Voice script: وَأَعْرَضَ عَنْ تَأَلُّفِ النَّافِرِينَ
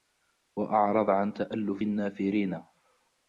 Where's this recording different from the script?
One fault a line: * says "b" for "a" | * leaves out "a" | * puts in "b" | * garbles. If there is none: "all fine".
all fine